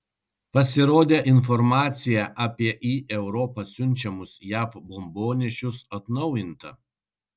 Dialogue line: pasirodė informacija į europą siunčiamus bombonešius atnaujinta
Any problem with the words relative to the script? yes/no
yes